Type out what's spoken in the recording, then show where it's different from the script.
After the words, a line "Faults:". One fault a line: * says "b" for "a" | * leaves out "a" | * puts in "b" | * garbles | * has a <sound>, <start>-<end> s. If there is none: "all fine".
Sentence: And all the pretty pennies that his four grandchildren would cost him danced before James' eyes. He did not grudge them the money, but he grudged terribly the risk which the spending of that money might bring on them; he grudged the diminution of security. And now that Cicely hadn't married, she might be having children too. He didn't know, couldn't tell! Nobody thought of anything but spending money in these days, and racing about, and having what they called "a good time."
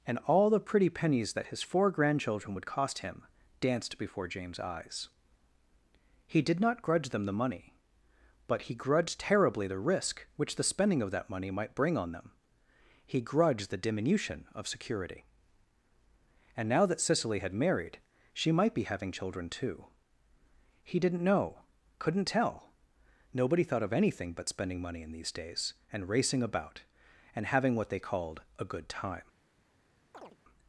And all the pretty pennies that his four grandchildren would cost him danced before James' eyes. He did not grudge them the money, but he grudged terribly the risk which the spending of that money might bring on them; he grudged the diminution of security. And now that Cicely had married, she might be having children too. He didn't know, couldn't tell! Nobody thought of anything but spending money in these days, and racing about, and having what they called "a good time."
Faults:
* says "had" for "hadn't"
* has a chirp, 30.1-30.4 s